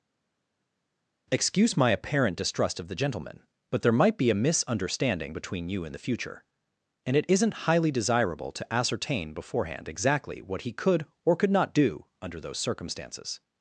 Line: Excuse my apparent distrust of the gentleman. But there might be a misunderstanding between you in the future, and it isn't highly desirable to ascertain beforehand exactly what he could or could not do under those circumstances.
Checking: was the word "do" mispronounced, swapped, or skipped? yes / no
no